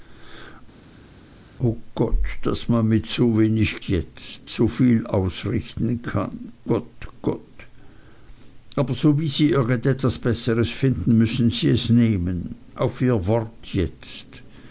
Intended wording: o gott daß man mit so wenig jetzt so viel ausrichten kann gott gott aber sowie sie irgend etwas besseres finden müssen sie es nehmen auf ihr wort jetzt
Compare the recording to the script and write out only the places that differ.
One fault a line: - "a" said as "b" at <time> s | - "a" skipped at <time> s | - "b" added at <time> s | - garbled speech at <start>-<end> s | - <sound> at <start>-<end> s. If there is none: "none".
none